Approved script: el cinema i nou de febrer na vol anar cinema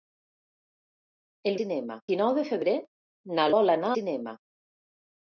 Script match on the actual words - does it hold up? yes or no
yes